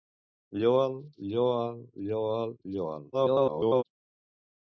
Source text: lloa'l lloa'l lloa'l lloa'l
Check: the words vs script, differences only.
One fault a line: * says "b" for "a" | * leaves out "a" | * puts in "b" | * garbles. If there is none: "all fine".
* garbles